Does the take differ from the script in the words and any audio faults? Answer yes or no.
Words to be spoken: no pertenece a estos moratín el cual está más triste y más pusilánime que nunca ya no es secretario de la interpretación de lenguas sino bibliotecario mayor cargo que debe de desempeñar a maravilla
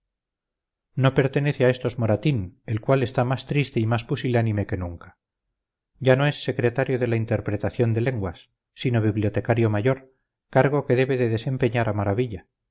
no